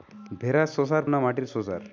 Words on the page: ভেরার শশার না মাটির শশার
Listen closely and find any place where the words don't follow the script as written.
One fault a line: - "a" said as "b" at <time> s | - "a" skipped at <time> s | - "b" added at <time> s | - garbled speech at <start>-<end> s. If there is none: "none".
none